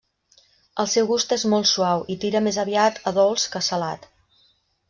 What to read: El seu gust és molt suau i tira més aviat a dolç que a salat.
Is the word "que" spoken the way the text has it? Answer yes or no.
yes